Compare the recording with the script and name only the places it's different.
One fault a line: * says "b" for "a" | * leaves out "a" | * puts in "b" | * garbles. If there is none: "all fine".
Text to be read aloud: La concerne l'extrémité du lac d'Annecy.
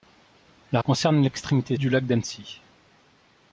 all fine